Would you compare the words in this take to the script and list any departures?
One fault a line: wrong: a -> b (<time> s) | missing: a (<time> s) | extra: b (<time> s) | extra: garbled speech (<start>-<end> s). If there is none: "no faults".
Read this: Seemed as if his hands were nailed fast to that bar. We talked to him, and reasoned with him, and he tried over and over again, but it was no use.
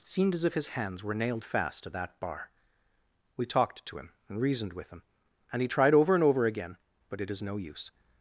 wrong: was -> is (7.3 s)